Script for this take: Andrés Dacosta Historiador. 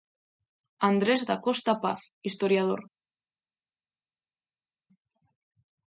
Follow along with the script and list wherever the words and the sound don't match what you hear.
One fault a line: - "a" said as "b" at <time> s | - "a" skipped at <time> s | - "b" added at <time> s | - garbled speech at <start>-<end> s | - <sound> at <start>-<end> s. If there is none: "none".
- "Paz" added at 1.8 s